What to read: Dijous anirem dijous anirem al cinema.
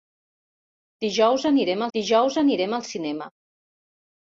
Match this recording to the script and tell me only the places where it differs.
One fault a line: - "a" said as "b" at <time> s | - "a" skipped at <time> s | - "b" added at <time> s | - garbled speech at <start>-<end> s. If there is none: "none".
none